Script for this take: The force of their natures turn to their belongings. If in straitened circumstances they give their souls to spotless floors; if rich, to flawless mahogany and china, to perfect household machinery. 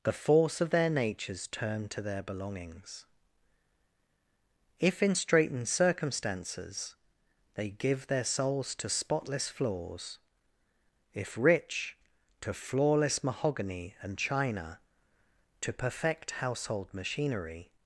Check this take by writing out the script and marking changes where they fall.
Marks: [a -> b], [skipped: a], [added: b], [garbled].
The force of their natures turn to their belongings. If in straitened circumstances they give their souls to spotless floors; if rich, to flawless mahogany and china, to perfect household machinery.